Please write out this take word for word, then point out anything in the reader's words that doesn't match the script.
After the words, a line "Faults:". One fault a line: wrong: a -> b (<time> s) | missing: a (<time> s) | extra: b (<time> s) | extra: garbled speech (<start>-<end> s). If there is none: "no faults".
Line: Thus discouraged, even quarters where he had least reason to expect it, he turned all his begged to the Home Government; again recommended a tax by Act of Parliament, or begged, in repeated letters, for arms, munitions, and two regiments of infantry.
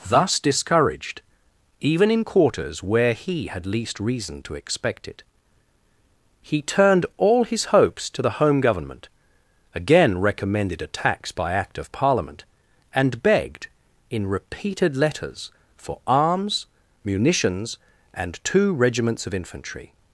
Thus discouraged, even in quarters where he had least reason to expect it, he turned all his hopes to the Home Government; again recommended a tax by Act of Parliament, and begged, in repeated letters, for arms, munitions, and two regiments of infantry.
Faults:
extra: in (2.1 s)
wrong: begged -> hopes (7.7 s)
wrong: or -> and (12.9 s)